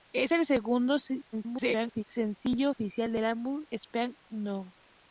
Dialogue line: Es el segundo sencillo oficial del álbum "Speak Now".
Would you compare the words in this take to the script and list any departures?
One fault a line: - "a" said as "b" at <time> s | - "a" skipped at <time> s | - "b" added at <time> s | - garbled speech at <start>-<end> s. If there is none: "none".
- garbled speech at 1.3-2.0 s